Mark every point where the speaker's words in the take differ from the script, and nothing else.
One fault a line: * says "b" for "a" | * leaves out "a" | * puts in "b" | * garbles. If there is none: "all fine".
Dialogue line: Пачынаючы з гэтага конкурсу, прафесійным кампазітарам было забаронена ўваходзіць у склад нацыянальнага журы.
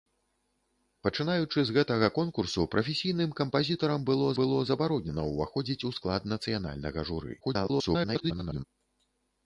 * puts in "было"
* garbles